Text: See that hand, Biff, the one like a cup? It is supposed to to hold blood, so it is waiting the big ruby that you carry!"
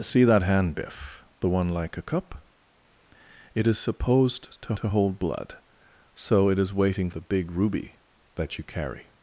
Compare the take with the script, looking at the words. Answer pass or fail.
pass